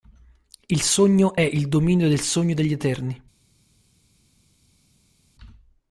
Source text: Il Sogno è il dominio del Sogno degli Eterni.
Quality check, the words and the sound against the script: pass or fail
pass